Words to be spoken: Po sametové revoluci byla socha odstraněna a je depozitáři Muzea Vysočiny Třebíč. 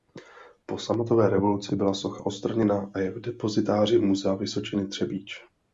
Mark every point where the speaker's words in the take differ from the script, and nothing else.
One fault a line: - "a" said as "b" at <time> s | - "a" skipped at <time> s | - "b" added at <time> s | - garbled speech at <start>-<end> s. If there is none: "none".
- "v" added at 3.1 s